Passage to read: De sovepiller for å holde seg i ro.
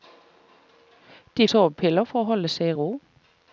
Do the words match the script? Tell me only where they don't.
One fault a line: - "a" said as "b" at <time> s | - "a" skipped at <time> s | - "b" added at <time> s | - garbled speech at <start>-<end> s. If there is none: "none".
none